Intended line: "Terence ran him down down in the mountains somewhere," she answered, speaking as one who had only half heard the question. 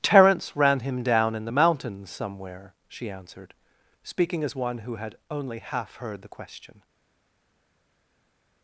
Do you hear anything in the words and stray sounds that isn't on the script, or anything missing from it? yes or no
yes